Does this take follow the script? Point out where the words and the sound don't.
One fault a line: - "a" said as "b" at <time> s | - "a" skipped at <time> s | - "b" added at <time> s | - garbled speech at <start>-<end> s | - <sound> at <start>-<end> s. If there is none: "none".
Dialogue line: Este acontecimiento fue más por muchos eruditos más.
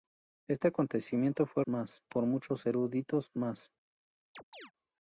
- chirp at 4.3-4.7 s